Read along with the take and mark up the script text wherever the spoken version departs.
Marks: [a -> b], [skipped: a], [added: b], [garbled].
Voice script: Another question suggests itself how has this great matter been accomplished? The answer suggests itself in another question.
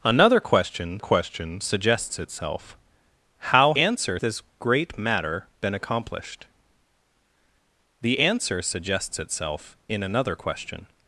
Another question [added: question] suggests itself how [has -> answer] this great matter been accomplished? The answer suggests itself in another question.